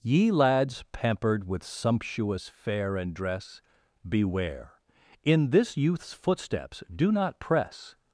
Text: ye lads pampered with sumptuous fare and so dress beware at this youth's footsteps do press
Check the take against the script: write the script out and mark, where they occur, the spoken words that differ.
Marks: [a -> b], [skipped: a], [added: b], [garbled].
ye lads pampered with sumptuous fare and [skipped: so] dress beware [at -> in] this youth's footsteps do [added: not] press